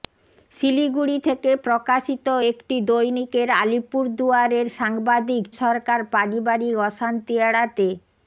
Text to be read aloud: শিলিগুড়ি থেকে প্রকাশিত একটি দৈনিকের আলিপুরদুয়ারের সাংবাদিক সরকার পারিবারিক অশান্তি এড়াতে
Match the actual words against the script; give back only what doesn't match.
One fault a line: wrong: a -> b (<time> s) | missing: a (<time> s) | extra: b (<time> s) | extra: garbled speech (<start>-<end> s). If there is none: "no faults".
no faults